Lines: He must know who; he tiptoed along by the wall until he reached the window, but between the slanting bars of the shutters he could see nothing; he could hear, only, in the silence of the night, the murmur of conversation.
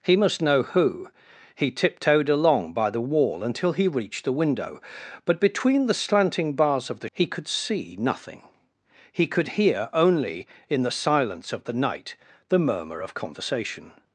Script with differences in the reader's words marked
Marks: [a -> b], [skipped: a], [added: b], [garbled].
He must know who; he tiptoed along by the wall until he reached the window, but between the slanting bars of the [skipped: shutters] he could see nothing; he could hear, only, in the silence of the night, the murmur of conversation.